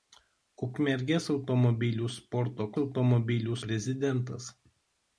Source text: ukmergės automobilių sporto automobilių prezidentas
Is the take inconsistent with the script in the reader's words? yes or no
no